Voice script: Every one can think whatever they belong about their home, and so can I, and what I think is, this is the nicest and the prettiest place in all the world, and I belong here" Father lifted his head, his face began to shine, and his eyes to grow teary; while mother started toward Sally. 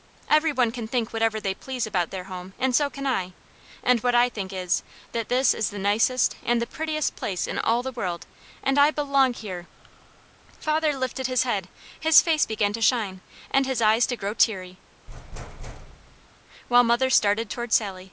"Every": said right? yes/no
yes